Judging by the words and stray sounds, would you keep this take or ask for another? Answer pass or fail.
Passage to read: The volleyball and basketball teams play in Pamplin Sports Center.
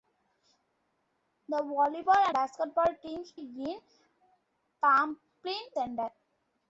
fail